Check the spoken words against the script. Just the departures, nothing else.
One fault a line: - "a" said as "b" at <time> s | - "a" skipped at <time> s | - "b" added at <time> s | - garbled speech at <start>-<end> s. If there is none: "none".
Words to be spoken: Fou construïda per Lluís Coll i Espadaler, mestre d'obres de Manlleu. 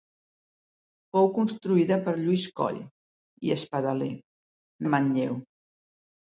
- "mestre d'obres" skipped at 4.1 s